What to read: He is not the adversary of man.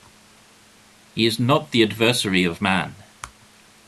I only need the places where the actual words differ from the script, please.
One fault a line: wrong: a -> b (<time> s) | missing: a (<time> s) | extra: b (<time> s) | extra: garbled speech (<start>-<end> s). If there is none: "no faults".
no faults